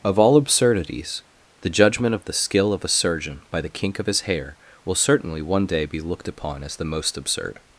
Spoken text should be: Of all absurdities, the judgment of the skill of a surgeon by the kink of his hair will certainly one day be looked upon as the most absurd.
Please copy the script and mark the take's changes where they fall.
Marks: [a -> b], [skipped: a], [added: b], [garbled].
Of all absurdities, the judgment of the skill of a surgeon by the kink of his hair will certainly one day be looked upon as the most absurd.